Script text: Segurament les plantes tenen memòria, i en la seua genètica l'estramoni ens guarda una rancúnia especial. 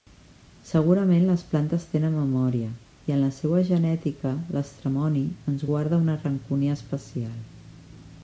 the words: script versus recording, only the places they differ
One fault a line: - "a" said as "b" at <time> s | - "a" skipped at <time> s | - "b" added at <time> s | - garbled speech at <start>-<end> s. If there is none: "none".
none